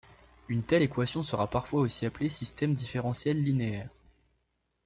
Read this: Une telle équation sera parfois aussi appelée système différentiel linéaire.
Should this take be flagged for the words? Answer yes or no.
no